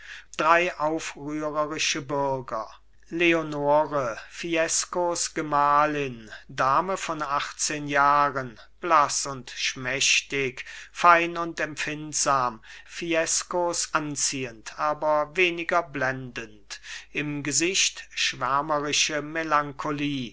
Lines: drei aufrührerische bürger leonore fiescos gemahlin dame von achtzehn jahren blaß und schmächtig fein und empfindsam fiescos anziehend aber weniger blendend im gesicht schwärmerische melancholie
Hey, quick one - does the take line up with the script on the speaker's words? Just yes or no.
yes